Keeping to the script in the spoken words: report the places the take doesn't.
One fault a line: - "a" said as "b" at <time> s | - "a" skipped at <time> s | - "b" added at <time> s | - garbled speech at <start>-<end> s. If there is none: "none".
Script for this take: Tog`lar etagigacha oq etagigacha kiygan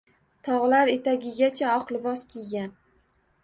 - "etagigacha" said as "libos" at 2.0 s